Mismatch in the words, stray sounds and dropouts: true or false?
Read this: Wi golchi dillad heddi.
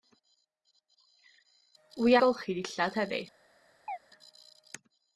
true